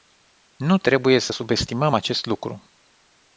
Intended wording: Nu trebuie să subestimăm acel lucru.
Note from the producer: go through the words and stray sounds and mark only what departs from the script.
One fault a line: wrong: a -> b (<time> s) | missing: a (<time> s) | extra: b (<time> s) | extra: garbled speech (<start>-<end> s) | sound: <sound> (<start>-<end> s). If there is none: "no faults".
wrong: acel -> acest (1.9 s)